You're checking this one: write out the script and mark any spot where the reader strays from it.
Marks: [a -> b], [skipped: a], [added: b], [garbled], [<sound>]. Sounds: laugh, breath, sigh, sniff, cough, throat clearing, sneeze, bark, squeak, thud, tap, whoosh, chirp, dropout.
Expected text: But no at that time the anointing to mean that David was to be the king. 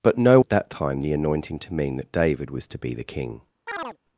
But no at that time the anointing to mean that David was to be the king. [chirp]